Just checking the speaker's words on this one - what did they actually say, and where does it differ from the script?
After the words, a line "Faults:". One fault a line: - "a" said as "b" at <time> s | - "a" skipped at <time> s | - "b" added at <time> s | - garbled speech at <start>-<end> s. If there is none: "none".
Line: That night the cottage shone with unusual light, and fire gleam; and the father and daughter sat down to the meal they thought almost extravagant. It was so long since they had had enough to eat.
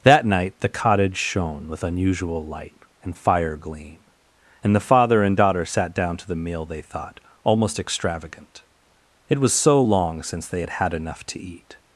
That night the cottage shone with unusual light, and fire gleam; and the father and daughter sat down to the meal they thought almost extravagant. It was so long since they had had enough to eat.
Faults:
none